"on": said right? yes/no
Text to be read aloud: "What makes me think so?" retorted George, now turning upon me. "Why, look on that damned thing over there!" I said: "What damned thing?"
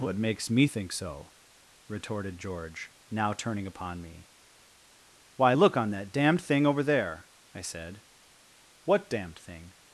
yes